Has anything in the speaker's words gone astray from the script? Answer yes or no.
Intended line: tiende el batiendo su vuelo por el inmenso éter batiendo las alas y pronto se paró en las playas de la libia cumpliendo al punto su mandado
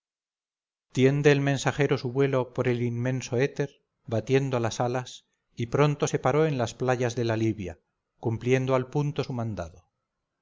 yes